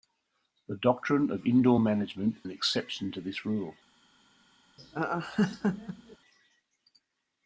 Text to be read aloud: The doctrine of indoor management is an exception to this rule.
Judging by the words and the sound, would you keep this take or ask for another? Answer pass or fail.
fail